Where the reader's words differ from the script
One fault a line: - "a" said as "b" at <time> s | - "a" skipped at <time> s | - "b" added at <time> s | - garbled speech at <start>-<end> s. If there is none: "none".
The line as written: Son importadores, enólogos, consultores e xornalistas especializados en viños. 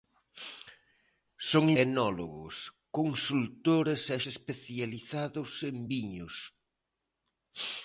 - "importadores" skipped at 1.6 s
- "xornalistas" skipped at 4.2 s